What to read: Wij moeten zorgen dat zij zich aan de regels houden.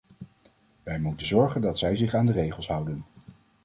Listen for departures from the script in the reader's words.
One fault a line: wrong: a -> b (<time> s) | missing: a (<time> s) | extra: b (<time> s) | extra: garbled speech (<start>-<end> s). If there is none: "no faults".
no faults